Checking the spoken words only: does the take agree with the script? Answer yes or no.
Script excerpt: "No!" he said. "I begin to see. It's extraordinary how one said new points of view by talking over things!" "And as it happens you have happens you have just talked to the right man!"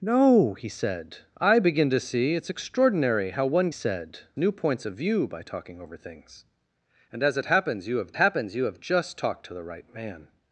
yes